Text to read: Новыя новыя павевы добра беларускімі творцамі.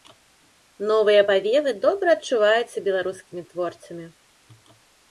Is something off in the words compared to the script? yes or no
yes